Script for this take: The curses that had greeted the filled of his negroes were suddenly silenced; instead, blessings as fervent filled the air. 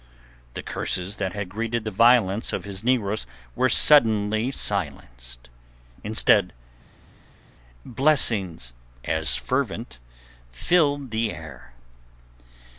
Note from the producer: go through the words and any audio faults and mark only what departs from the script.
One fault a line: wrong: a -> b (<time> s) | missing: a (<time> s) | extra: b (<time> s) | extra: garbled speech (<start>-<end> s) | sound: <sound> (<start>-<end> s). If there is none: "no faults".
wrong: filled -> violence (1.9 s)